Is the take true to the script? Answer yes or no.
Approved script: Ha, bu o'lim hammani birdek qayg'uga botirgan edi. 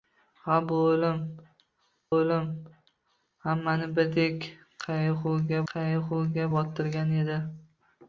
no